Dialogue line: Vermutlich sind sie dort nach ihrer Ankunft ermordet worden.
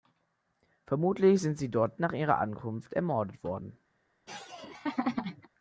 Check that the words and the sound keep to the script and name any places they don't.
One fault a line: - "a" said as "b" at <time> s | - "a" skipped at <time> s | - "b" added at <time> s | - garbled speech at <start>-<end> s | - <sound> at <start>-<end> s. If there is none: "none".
- laugh at 4.3-5.5 s